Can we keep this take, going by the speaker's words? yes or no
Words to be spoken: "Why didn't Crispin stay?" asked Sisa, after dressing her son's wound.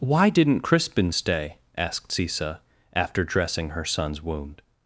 yes